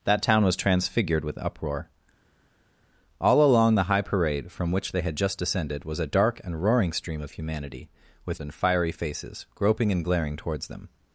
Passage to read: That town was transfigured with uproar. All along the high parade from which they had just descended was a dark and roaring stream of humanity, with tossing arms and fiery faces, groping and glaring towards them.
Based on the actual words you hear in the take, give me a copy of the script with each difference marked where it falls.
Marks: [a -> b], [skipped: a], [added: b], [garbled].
That town was transfigured with uproar. All along the high parade from which they had just descended was a dark and roaring stream of humanity, with [skipped: tossing arms] and fiery faces, groping and glaring towards them.